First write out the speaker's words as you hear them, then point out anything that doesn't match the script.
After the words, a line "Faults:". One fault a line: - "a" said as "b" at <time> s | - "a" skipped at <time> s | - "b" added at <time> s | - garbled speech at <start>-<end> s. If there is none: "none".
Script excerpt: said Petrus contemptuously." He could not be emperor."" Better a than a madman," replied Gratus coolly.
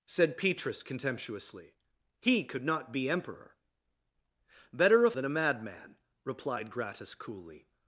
said Petrus contemptuously." He could not be emperor."" Better a than a madman," replied Gratus coolly.
Faults:
none